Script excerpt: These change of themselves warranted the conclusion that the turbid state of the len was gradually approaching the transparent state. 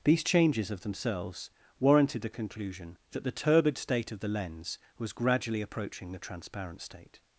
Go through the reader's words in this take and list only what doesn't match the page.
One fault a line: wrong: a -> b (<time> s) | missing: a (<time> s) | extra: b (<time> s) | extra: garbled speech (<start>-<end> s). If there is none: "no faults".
wrong: change -> changes (0.2 s)
wrong: len -> lens (4.3 s)